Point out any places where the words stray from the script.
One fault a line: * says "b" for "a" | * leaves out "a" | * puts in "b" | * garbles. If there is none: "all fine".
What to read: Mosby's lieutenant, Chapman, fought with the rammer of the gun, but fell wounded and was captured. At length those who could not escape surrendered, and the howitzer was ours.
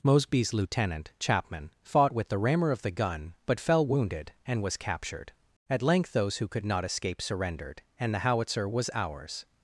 all fine